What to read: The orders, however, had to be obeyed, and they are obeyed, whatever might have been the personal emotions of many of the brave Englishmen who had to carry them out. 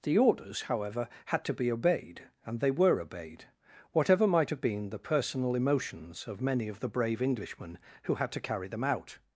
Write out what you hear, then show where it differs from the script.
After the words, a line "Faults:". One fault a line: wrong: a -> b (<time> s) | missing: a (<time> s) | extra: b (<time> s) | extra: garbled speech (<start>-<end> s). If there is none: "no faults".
The orders, however, had to be obeyed, and they were obeyed, whatever might have been the personal emotions of many of the brave Englishmen who had to carry them out.
Faults:
wrong: are -> were (2.7 s)